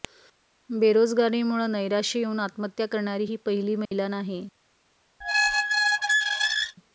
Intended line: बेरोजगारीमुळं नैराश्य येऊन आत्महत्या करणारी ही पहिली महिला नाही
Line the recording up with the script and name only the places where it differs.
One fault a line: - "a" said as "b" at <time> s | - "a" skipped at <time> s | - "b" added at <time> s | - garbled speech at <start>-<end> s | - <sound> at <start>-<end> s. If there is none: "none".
- dropout at 3.9-3.9 s
- squeak at 5.2-6.8 s